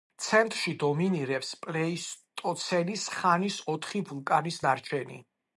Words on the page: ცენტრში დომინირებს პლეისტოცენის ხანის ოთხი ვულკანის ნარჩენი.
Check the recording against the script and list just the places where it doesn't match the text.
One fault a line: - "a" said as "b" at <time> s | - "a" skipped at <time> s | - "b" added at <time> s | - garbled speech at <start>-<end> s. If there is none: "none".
none